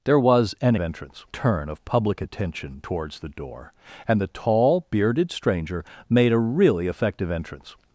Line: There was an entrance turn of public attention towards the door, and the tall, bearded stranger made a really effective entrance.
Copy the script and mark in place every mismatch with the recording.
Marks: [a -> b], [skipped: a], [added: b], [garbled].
There was an entrance turn of public attention towards the door, and the tall, bearded stranger made a really effective entrance.